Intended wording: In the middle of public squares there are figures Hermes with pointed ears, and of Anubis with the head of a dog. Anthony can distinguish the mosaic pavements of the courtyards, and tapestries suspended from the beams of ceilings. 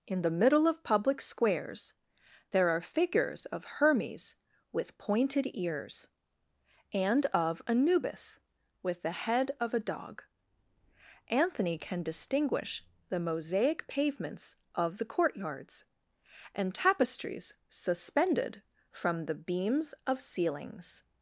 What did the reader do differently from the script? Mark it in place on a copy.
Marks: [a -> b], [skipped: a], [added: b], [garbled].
In the middle of public squares there are figures [added: of] Hermes with pointed ears, and of Anubis with the head of a dog. Anthony can distinguish the mosaic pavements of the courtyards, and tapestries suspended from the beams of ceilings.